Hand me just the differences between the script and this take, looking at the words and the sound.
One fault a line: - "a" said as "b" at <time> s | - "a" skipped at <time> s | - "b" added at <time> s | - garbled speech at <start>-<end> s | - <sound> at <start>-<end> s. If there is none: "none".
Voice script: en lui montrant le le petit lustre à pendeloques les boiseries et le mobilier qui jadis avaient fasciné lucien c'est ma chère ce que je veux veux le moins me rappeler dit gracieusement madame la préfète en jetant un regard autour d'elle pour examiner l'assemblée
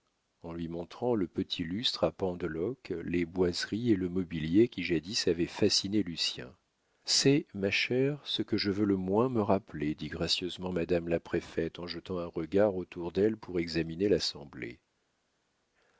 - "le" skipped at 1.3 s
- "veux" skipped at 8.8 s